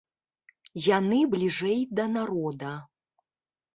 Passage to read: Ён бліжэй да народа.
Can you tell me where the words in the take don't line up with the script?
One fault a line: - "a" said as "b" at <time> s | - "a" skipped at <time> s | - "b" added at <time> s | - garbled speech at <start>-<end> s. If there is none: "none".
- "Ён" said as "Яны" at 0.8 s